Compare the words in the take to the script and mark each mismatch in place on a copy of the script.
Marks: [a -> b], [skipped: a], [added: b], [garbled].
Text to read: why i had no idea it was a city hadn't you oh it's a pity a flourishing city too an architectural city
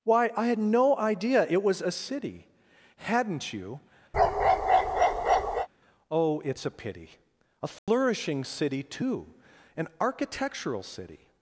why i had no idea it was a city hadn't you oh it's a pity a flourishing city too an architectural city